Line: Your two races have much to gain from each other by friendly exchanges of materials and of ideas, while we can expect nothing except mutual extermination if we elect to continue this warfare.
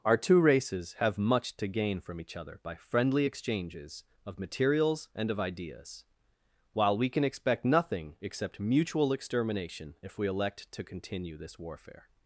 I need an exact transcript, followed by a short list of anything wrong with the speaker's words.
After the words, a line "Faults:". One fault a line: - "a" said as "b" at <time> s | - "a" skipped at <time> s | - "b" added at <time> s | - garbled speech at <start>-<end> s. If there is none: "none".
Our two races have much to gain from each other by friendly exchanges of materials and of ideas, while we can expect nothing except mutual extermination if we elect to continue this warfare.
Faults:
- "Your" said as "Our" at 0.0 s